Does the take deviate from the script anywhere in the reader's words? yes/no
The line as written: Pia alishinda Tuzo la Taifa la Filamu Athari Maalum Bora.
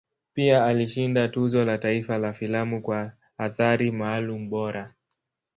yes